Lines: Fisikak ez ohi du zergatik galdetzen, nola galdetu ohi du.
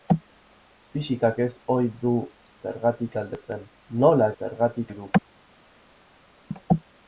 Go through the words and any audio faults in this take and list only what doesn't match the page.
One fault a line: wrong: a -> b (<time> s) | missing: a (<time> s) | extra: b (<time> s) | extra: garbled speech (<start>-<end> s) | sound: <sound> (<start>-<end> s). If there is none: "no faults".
wrong: galdetu -> zergatik (4.4 s)